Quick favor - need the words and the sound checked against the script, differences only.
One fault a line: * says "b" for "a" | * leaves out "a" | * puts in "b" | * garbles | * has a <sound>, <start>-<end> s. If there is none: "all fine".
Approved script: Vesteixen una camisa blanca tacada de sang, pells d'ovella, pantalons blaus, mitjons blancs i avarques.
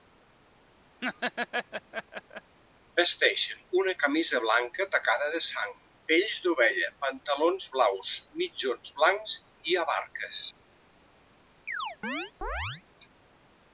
* has a laugh, 1.0-2.6 s
* has a chirp, 11.7-12.8 s